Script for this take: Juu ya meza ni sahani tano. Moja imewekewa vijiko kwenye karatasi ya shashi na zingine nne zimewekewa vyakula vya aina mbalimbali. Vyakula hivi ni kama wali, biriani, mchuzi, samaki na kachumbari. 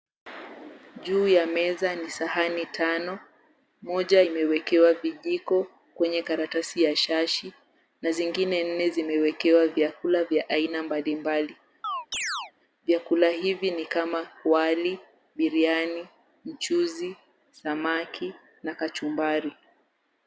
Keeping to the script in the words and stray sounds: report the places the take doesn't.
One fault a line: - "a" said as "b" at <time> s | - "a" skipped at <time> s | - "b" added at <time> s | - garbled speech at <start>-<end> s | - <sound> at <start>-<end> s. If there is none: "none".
- chirp at 11.8-12.5 s